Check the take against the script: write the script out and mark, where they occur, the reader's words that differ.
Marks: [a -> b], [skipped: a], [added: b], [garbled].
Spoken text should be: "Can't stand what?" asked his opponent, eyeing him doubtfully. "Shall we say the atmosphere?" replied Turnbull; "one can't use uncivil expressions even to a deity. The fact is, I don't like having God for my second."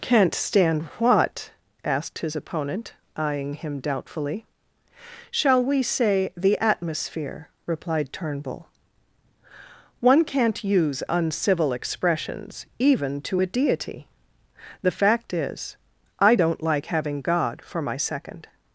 "Can't stand what?" asked his opponent, eyeing him doubtfully. "Shall we say the atmosphere?" replied Turnbull; "one can't use uncivil expressions even to a deity. The fact is, I don't like having God for my second."